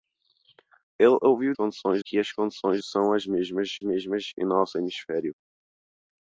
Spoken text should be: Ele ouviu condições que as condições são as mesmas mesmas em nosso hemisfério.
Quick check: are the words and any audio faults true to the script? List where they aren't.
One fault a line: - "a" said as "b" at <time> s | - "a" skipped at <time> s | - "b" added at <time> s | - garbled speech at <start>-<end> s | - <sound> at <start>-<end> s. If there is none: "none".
none